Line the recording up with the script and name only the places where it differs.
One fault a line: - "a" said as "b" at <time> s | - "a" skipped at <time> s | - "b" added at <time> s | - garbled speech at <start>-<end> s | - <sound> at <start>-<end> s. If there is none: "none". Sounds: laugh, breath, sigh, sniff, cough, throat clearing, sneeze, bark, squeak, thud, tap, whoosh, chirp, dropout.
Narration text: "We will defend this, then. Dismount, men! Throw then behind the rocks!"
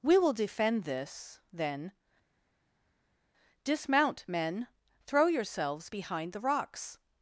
- "then" said as "yourselves" at 5.3 s